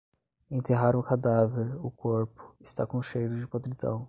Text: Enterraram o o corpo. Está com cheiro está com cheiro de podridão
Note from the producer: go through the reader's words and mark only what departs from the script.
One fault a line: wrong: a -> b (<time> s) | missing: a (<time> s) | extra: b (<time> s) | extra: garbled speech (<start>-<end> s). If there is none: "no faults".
extra: cadáver (1.0 s)
missing: está com cheiro (3.4 s)